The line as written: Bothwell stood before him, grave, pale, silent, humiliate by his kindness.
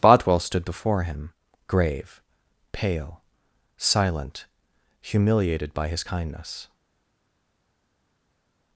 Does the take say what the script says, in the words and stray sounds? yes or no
no